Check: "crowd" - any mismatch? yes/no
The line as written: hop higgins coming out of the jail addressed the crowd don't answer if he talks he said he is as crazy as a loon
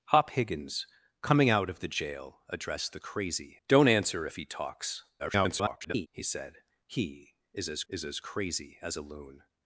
yes